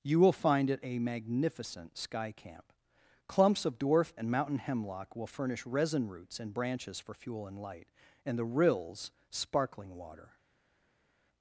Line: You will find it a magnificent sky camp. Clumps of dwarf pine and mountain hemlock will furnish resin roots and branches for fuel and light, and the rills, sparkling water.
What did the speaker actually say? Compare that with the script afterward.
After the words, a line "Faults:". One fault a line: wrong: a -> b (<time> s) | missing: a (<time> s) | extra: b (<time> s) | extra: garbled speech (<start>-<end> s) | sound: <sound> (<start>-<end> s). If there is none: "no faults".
You will find it a magnificent sky camp. Clumps of dwarf and mountain hemlock will furnish resin roots and branches for fuel and light, and the rills, sparkling water.
Faults:
missing: pine (4.1 s)